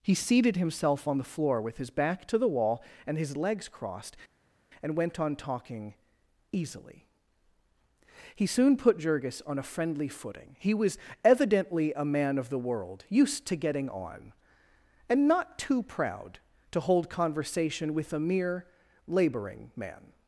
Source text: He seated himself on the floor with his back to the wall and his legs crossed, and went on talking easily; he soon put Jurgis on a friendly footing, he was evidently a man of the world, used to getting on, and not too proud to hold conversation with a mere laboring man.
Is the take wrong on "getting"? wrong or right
right